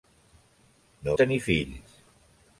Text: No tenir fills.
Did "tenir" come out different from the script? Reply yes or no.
no